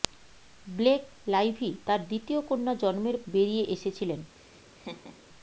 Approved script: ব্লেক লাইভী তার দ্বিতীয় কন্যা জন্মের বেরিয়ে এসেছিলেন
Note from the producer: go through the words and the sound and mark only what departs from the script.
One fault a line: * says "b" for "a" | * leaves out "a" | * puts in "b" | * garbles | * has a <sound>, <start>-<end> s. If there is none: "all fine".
* has a laugh, 4.4-5.2 s